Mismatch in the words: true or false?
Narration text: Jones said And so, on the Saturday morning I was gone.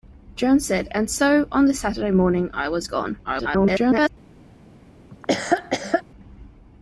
true